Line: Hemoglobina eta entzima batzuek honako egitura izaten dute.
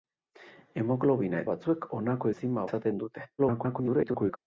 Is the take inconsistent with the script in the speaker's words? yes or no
yes